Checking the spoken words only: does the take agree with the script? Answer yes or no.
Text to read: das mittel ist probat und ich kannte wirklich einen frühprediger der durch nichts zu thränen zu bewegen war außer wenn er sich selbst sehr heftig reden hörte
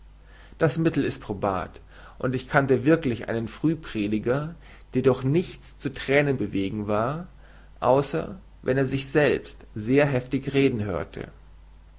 no